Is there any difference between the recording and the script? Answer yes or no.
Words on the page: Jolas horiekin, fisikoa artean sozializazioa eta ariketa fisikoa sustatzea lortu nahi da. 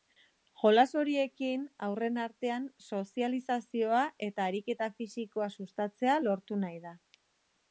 yes